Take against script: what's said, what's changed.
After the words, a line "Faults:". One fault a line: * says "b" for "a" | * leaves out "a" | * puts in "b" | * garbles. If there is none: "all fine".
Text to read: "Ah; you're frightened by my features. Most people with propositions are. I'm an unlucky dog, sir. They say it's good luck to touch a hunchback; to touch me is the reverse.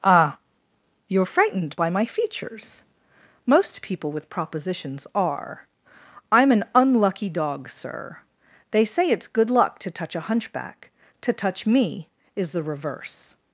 "Ah; you're frightened by my features. Most people with propositions are. I'm an unlucky dog, sir. They say it's good luck to touch a hunchback; to touch me is the reverse.
Faults:
all fine